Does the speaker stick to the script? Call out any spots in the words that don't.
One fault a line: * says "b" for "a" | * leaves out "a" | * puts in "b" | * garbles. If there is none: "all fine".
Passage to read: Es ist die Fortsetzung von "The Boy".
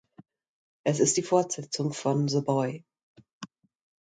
all fine